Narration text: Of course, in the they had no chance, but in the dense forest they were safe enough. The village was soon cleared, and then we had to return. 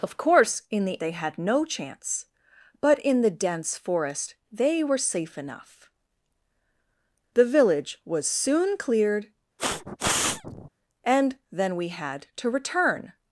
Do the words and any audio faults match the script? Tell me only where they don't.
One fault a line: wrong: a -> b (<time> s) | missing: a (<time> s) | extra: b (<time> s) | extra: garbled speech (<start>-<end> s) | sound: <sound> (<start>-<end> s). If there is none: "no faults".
sound: sniff (9.6-10.7 s)